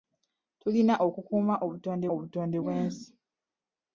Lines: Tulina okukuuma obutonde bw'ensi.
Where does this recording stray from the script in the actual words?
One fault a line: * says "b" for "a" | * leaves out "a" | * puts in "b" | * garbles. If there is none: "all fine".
* puts in "obutonde"